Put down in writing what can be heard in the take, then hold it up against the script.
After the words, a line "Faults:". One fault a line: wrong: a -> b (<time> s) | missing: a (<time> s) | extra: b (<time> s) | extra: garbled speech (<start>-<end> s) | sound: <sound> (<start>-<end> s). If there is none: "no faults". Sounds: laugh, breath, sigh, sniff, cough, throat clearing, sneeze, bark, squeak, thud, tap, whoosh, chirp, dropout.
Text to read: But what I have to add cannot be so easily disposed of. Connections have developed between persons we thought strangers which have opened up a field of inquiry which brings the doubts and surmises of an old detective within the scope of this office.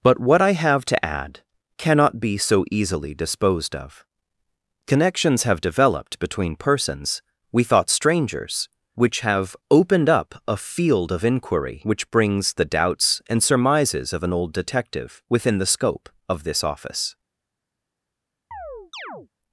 But what I have to add cannot be so easily disposed of. Connections have developed between persons we thought strangers which have opened up a field of inquiry which brings the doubts and surmises of an old detective within the scope of this office.
Faults:
sound: chirp (18.5-19.3 s)